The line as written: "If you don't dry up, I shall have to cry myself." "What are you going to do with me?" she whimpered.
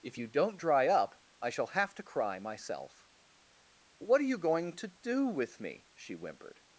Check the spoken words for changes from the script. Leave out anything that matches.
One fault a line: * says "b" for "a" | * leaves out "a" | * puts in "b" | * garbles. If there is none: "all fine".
all fine